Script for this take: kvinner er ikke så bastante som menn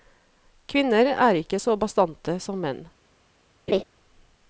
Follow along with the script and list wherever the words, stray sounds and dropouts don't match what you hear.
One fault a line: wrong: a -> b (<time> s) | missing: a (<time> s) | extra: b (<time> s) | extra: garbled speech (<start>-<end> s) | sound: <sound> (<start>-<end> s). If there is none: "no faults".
sound: laugh (3.7-3.8 s)